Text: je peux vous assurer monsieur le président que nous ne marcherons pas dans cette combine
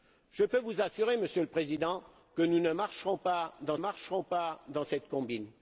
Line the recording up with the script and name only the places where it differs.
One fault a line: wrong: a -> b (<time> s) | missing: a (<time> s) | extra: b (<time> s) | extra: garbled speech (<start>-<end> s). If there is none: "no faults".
extra: marcherons pas dans (3.8 s)